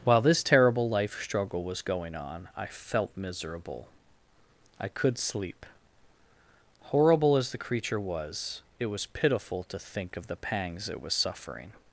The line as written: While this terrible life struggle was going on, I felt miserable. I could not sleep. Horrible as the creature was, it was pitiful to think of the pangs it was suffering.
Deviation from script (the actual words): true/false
true